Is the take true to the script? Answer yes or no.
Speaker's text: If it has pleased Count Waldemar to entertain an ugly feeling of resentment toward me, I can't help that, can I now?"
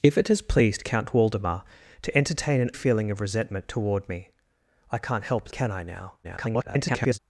no